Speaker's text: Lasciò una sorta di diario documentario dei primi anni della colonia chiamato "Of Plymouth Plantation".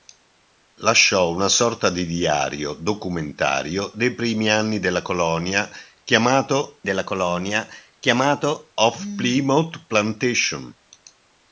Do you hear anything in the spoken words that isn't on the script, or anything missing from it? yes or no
yes